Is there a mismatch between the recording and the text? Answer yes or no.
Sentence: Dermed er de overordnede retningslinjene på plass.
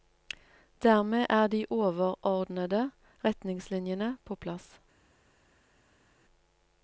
no